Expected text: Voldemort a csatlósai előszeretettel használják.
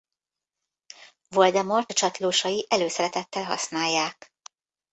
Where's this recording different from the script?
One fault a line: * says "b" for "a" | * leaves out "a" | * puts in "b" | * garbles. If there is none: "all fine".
all fine